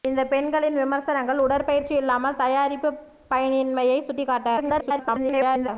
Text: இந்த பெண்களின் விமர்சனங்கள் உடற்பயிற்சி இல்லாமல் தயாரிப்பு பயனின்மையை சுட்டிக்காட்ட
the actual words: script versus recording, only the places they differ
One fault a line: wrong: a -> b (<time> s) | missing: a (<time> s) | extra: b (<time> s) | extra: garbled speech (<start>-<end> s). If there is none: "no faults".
extra: garbled speech (4.6-5.7 s)